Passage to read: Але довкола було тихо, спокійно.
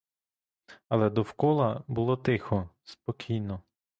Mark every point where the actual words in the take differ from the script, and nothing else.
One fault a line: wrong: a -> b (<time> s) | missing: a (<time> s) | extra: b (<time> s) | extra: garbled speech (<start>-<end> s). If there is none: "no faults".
no faults